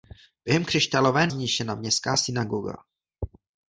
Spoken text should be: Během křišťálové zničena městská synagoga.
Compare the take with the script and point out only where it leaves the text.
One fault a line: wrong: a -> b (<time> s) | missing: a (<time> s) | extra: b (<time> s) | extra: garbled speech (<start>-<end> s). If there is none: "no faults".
no faults